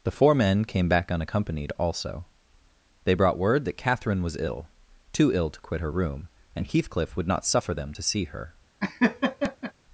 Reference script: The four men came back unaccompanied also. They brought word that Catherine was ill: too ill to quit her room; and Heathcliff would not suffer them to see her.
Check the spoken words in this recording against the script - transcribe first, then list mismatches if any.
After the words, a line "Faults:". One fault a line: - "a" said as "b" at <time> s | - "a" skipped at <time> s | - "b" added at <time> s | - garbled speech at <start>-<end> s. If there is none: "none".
The four men came back unaccompanied also. They brought word that Catherine was ill: too ill to quit her room; and Heathcliff would not suffer them to see her.
Faults:
none